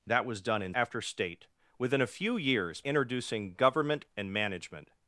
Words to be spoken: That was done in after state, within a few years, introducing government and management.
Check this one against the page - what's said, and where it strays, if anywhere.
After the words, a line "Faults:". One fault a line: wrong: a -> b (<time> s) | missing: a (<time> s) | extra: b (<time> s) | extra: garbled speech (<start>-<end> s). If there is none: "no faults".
That was done in after state, within a few years, introducing government and management.
Faults:
no faults